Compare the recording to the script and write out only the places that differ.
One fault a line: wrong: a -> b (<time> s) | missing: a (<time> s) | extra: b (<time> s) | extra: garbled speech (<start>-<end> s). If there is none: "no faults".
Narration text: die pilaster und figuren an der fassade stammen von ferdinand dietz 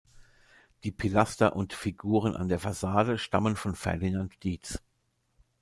no faults